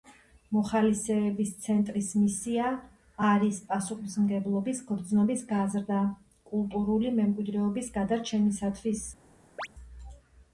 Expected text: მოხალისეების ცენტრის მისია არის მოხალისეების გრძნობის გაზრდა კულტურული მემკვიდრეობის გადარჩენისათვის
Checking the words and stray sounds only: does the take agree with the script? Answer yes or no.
no